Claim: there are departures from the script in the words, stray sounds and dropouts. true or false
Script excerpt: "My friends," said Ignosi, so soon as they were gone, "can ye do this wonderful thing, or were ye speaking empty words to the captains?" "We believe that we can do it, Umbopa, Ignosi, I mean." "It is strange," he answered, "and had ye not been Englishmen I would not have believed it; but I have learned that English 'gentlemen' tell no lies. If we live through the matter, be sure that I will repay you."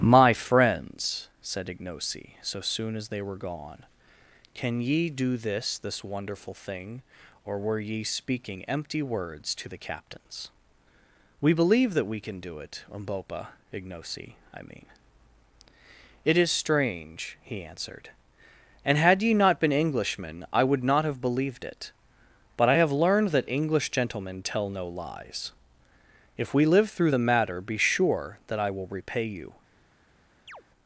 true